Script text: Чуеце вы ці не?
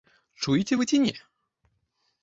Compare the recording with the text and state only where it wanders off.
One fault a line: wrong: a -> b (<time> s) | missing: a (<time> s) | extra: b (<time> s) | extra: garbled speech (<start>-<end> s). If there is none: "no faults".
no faults